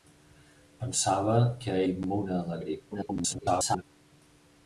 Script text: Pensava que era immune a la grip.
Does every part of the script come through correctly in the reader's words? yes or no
no